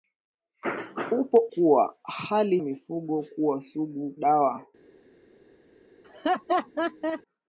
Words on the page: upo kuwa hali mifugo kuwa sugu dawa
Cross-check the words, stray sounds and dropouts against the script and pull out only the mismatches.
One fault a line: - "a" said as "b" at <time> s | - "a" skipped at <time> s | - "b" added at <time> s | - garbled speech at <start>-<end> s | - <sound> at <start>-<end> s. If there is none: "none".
- laugh at 6.0-7.2 s